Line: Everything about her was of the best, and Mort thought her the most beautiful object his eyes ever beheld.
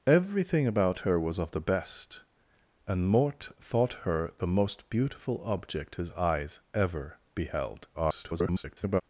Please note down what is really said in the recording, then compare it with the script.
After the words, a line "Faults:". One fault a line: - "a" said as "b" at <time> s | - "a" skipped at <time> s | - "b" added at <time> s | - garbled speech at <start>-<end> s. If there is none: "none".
Everything about her was of the best, and Mort thought her the most beautiful object his eyes ever beheld. [garbled]
Faults:
- garbled speech at 7.9-9.0 s